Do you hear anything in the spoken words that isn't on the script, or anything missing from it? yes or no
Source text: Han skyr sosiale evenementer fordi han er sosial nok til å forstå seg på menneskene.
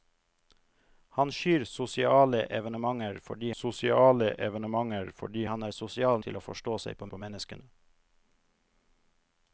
yes